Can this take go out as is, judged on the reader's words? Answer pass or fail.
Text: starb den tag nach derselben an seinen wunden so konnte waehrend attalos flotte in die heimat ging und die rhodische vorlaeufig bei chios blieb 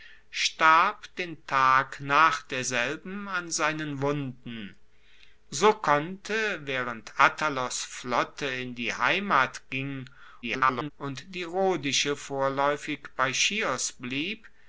fail